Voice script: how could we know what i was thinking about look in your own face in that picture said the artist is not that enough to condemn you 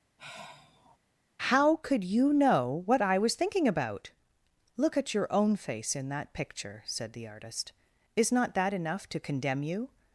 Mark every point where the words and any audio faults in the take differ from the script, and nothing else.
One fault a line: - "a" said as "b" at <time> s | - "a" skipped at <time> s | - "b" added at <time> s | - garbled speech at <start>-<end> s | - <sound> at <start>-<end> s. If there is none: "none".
- sigh at 0.2-1.0 s
- "we" said as "you" at 2.0 s
- "in" said as "at" at 4.9 s